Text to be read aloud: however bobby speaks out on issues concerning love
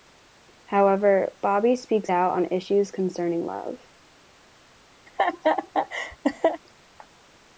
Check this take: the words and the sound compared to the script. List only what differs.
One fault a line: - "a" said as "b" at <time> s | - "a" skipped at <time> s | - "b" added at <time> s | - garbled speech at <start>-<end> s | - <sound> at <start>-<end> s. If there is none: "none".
- laugh at 5.1-6.6 s